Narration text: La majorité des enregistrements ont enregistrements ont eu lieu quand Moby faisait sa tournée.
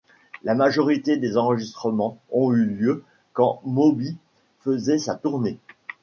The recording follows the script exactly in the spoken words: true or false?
false